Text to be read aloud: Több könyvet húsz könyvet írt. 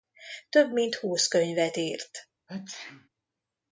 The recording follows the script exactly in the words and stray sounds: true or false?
false